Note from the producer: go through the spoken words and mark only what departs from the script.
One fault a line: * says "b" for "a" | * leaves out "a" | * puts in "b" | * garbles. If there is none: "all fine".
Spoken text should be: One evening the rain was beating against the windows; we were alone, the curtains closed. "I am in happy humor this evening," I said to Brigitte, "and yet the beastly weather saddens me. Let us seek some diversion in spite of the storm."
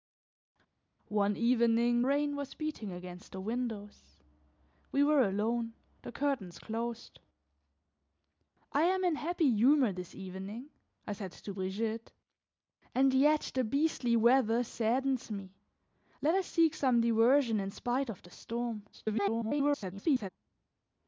* leaves out "the"
* garbles